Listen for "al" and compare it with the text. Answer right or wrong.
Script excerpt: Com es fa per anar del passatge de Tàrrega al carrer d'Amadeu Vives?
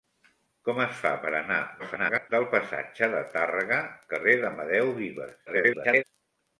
wrong